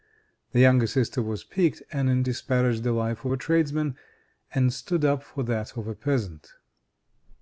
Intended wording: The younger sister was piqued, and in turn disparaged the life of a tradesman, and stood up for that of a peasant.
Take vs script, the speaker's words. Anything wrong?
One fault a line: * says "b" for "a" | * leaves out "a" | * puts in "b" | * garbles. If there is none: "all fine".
* leaves out "turn"